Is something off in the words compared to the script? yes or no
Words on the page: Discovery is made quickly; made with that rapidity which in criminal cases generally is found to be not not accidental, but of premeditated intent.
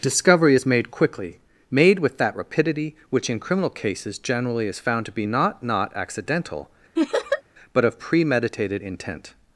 no